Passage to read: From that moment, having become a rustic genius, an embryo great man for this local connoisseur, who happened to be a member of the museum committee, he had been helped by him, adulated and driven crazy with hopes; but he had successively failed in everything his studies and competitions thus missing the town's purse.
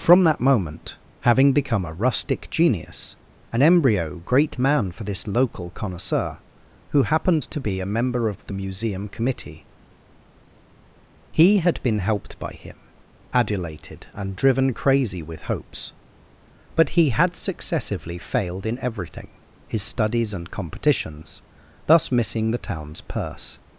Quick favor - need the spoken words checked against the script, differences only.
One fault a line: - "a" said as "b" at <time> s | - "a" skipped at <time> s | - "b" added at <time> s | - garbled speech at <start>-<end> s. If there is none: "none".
none